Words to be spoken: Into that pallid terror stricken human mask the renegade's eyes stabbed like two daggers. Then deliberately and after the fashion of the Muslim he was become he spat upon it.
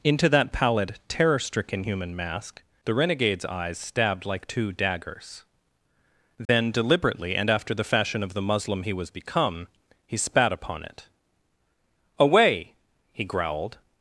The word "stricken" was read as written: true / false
true